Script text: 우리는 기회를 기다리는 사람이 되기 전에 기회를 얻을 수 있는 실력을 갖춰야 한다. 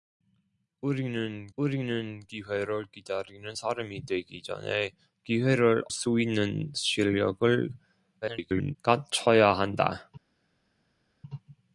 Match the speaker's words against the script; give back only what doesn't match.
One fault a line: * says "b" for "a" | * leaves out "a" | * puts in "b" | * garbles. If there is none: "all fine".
* puts in "우리는"
* leaves out "얻을"
* garbles